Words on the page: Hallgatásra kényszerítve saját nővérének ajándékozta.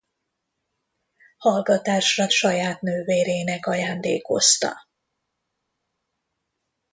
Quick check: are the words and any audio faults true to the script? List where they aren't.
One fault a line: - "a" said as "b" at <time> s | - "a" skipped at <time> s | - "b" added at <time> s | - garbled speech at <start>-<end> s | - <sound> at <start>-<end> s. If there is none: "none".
- "kényszerítve" skipped at 2.3 s